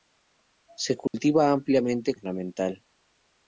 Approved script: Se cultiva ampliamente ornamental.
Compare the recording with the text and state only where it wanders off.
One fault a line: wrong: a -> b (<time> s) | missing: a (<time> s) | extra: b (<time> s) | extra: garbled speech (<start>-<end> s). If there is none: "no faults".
no faults